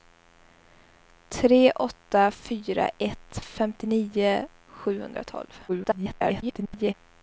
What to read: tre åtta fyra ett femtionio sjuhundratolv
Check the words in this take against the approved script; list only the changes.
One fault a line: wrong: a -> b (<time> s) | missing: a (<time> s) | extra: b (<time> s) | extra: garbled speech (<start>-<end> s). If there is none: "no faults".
extra: garbled speech (5.7-6.9 s)